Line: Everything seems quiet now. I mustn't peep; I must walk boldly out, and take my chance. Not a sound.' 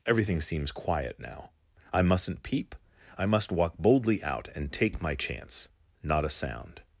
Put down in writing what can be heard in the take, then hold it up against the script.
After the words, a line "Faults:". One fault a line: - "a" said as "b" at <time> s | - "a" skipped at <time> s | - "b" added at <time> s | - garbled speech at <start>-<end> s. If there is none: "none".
Everything seems quiet now. I mustn't peep; I must walk boldly out, and take my chance. Not a sound.'
Faults:
none